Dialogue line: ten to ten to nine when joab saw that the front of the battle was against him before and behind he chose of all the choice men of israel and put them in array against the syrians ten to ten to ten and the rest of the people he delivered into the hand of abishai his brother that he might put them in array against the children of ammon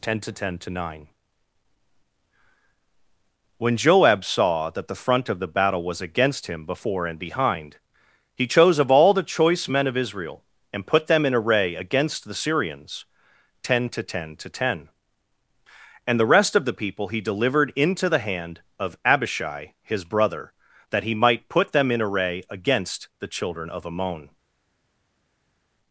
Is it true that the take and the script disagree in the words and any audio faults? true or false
false